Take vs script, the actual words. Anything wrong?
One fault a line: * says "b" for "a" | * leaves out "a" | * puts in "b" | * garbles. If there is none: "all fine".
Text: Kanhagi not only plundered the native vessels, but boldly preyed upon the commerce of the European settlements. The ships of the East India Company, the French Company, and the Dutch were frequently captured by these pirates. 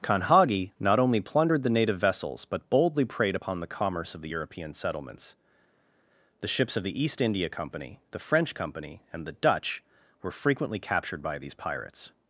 all fine